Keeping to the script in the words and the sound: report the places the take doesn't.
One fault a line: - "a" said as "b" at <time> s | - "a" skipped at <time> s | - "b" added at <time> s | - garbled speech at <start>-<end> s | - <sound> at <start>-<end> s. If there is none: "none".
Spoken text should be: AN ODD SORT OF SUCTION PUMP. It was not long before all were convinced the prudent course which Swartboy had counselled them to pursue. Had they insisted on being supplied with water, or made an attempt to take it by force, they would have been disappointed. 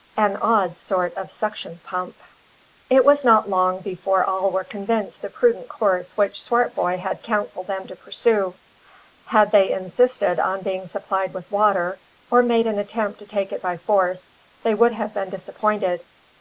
none